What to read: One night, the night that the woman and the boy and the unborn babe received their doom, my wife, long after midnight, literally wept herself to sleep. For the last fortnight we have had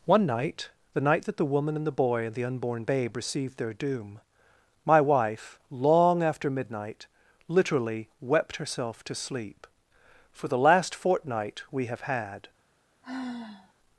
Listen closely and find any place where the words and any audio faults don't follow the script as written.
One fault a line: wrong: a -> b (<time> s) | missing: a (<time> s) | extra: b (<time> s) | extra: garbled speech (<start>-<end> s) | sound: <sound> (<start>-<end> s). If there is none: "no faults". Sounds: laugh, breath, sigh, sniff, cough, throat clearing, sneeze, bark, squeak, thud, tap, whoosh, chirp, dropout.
sound: sigh (13.0-13.7 s)